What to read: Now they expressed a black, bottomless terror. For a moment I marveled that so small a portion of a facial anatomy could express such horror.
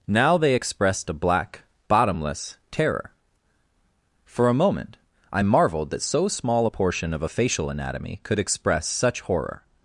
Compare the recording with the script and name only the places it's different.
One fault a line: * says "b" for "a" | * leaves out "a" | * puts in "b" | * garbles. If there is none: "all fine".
all fine